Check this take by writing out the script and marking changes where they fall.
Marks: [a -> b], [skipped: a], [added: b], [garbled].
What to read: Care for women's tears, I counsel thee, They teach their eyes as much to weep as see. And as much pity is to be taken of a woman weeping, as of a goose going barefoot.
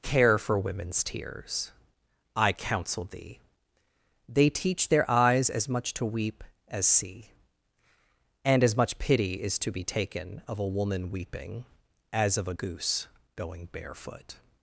Care for women's tears, I counsel thee, They teach their eyes as much to weep as see. And as much pity is to be taken of a woman weeping, as of a goose going barefoot.